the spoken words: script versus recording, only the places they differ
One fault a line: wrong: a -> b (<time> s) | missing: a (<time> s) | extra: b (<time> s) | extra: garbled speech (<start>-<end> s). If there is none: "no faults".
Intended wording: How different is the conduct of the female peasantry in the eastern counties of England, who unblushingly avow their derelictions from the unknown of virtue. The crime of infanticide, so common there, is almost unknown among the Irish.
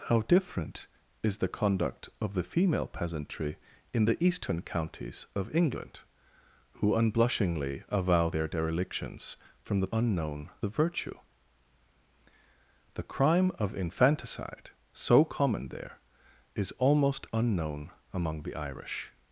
no faults